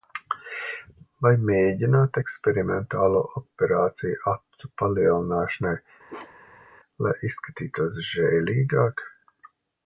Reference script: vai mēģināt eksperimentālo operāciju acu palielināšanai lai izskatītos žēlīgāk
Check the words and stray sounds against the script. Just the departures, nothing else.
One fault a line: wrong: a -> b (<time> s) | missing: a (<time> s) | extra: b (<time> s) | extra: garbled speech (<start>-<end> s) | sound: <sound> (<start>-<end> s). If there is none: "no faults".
sound: bark (6.1-6.7 s)